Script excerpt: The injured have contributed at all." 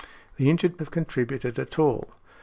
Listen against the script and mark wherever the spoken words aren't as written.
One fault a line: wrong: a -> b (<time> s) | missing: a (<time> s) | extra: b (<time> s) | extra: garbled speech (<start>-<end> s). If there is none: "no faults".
no faults